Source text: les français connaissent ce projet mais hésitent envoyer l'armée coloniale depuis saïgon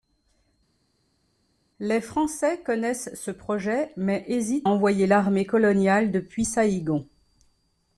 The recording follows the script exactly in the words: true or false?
true